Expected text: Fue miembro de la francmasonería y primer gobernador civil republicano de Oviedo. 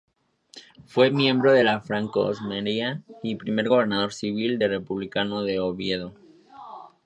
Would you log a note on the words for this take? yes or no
no